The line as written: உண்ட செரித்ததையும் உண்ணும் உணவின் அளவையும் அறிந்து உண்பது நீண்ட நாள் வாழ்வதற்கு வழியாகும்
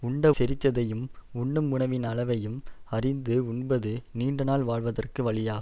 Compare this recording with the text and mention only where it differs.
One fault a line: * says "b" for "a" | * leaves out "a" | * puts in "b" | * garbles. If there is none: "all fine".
all fine